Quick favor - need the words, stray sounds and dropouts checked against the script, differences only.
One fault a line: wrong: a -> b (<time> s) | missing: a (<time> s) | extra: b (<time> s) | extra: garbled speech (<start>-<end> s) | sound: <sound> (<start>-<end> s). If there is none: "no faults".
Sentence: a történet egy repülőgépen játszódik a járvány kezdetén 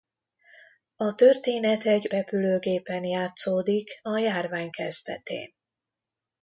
no faults